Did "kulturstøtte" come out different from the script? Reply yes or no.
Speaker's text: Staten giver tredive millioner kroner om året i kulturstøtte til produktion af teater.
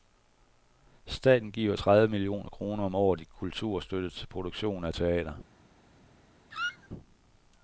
no